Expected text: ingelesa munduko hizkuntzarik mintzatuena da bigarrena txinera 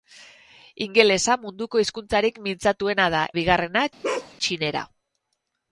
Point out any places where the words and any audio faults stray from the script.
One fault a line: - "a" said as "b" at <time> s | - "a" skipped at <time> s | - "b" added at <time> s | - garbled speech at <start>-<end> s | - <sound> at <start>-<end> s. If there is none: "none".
- bark at 4.0-4.3 s